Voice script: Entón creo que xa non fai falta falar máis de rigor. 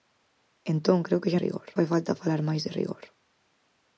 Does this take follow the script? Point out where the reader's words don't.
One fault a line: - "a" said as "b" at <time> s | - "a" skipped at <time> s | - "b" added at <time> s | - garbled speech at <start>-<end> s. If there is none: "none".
- "non" said as "rigor" at 1.4 s